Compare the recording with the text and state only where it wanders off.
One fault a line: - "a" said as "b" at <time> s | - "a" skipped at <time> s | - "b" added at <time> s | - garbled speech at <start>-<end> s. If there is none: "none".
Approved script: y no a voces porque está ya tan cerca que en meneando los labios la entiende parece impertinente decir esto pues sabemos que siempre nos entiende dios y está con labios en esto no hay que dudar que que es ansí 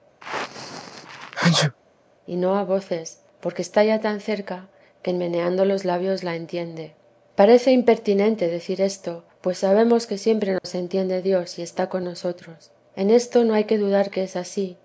- "labios" said as "nosotros" at 12.0 s
- "que" skipped at 14.2 s